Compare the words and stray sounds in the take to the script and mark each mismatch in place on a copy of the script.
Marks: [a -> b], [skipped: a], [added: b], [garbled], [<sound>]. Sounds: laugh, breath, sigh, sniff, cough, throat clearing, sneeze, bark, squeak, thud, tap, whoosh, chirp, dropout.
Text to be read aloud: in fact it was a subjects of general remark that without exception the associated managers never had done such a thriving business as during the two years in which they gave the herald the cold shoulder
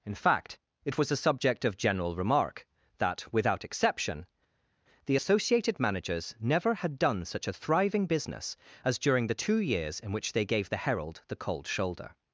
in fact it was a [subjects -> subject] of general remark that without exception the associated managers never had done such a thriving business as during the two years in which they gave the herald the cold shoulder